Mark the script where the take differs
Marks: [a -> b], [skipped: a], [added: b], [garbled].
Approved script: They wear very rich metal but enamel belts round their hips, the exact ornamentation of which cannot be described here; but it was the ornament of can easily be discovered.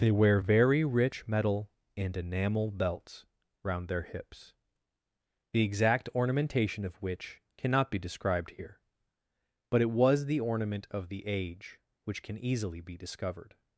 They wear very rich metal [but -> and] enamel belts round their hips, the exact ornamentation of which cannot be described here; but it was the ornament of [added: the age which] can easily be discovered.